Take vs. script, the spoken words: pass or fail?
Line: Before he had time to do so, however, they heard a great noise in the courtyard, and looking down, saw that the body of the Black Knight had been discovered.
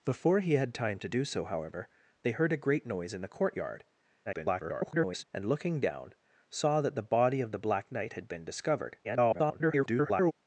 fail